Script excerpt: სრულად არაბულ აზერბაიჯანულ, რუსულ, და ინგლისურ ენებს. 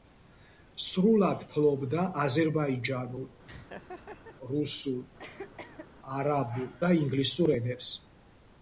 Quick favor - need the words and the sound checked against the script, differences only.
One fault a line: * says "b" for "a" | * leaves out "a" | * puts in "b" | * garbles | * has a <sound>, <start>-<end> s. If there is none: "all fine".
* says "ფლობდა" for "არაბულ"
* has a laugh, 3.5-4.4 s
* has a cough, 5.2-5.9 s
* puts in "არაბულ"